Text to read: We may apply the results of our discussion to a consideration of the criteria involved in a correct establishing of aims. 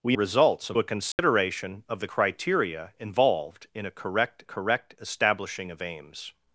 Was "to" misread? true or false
true